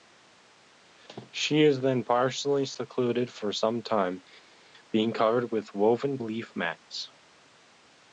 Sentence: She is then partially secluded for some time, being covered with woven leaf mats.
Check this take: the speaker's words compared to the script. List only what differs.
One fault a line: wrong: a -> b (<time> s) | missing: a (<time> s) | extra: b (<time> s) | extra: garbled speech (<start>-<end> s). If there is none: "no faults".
no faults